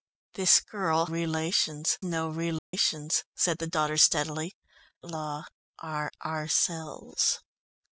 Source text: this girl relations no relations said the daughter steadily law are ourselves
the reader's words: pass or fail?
pass